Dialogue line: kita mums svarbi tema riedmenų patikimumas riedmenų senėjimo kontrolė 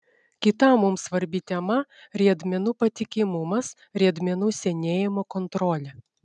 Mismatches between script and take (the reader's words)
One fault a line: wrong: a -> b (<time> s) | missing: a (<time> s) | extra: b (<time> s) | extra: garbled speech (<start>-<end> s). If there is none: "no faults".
no faults